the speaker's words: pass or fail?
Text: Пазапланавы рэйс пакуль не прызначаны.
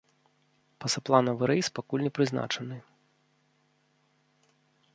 pass